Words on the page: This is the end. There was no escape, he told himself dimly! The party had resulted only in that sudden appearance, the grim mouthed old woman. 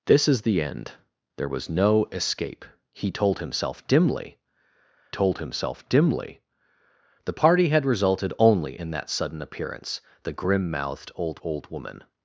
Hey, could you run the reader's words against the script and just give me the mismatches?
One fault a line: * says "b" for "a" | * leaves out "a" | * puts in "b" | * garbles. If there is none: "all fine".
* puts in "told himself dimly"
* puts in "old"